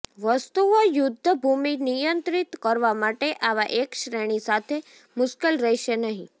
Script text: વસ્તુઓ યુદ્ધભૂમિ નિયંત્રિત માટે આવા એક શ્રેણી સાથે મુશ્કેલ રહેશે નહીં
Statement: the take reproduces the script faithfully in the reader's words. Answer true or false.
false